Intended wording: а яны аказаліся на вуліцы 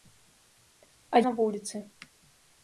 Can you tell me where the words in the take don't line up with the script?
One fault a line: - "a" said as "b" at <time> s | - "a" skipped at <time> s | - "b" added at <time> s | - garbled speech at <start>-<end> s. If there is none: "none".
- "яны аказаліся" skipped at 1.2 s